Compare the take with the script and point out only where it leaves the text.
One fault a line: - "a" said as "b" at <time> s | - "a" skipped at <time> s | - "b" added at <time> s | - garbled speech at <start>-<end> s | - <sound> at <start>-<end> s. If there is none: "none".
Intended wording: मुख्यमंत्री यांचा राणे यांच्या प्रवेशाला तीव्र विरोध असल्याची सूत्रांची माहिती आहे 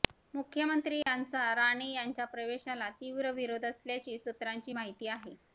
- dropout at 1.0-1.1 s